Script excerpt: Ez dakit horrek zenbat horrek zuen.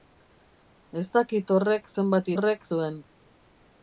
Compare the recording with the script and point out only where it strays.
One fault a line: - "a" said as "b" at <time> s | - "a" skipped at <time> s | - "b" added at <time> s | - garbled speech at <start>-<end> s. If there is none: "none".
none